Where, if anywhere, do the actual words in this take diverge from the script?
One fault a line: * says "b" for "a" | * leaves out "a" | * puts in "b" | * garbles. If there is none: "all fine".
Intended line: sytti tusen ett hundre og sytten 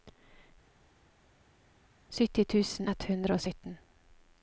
all fine